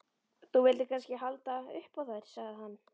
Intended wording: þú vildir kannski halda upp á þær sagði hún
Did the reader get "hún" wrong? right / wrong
wrong